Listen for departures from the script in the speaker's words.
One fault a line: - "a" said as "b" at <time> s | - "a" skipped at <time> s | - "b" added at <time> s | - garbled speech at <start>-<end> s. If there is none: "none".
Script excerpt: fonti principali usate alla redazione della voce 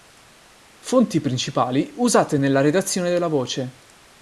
- "alla" said as "nella" at 2.4 s